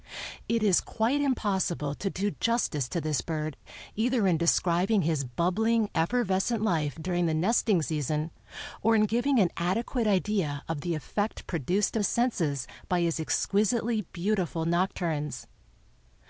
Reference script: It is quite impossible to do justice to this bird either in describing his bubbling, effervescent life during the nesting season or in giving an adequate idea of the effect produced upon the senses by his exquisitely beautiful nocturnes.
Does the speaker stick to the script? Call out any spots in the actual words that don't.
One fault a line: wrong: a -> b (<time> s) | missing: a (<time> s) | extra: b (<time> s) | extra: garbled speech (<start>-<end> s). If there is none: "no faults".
missing: upon (12.0 s)